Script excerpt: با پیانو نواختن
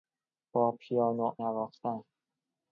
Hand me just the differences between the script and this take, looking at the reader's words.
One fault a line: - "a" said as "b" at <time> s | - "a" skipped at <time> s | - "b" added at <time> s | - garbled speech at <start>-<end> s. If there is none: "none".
none